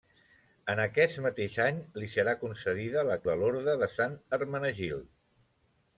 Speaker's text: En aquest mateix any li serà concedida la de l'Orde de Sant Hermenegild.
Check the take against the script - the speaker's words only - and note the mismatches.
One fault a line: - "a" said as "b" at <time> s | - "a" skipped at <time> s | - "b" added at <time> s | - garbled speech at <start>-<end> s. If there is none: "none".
none